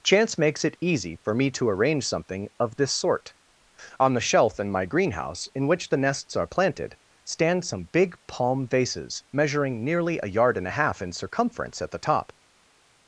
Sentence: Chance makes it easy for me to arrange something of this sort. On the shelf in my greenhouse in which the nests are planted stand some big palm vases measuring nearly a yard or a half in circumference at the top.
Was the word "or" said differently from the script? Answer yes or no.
yes